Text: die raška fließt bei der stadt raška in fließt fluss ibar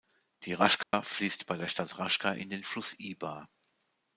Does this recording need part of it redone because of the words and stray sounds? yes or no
yes